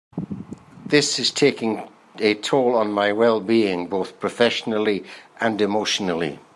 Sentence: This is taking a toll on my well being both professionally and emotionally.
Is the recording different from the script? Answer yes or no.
no